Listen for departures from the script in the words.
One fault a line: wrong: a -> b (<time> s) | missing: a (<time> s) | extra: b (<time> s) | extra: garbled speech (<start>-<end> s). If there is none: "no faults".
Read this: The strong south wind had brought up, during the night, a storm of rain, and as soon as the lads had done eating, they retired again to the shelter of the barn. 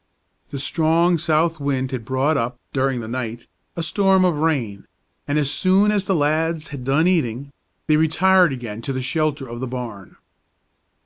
no faults